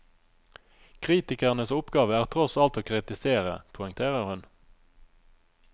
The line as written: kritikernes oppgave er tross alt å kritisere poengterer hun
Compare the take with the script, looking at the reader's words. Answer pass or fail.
pass